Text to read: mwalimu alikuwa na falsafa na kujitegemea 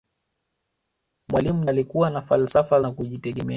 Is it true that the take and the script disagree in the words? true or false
false